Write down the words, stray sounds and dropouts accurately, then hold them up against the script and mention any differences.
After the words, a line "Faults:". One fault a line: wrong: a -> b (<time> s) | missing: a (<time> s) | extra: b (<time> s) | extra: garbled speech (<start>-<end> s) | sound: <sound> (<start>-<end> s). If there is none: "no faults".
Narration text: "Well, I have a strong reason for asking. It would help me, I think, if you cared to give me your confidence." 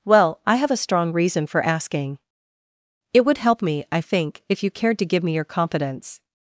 "Well, I have a strong reason for asking. It would help me, I think, if you cared to give me your confidence."
Faults:
no faults